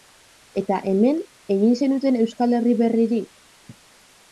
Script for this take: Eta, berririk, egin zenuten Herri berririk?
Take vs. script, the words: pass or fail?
fail